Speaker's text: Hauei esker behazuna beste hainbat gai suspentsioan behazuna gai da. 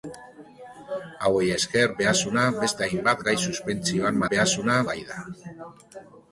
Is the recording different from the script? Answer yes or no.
no